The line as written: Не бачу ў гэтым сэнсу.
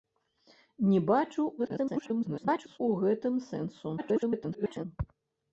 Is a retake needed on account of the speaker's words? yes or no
yes